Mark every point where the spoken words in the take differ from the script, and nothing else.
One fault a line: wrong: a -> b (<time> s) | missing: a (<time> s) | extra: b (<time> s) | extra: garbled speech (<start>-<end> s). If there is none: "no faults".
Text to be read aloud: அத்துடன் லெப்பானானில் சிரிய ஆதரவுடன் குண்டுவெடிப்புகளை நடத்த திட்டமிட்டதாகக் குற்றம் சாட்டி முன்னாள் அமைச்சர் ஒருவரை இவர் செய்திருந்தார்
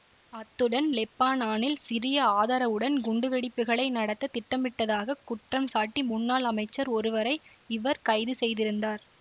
extra: கைது (8.0 s)